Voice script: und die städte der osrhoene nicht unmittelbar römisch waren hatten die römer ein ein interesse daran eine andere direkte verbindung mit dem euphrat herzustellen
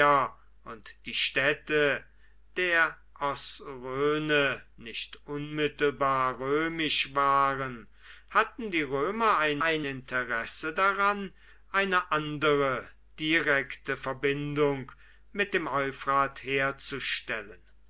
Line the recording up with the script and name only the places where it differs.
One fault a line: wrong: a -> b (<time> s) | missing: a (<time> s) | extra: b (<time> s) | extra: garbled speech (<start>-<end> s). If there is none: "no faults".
no faults